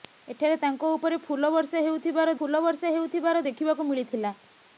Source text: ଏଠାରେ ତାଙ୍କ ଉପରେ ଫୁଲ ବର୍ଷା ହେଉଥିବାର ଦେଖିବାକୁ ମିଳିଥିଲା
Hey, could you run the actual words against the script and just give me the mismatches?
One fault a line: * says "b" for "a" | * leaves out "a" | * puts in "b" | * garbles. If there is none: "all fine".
* puts in "ଫୁଲ ବର୍ଷା ହେଉଥିବାର"